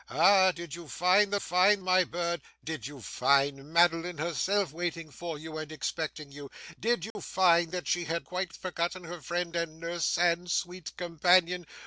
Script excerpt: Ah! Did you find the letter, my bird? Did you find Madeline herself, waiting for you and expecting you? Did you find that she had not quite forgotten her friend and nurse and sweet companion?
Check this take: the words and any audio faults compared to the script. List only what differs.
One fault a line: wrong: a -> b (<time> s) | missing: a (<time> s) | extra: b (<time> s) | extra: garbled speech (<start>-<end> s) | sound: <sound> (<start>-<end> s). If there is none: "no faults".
wrong: letter -> find (1.4 s)
sound: dropout (7.1-7.2 s)
missing: not (8.3 s)